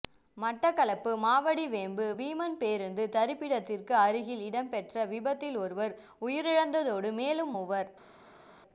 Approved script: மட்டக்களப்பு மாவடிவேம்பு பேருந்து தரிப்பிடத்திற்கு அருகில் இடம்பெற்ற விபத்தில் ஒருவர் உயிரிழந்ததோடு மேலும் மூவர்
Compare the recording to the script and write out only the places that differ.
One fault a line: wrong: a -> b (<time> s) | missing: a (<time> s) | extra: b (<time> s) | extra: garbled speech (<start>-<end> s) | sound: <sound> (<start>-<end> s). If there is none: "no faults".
extra: வீமன் (2.2 s)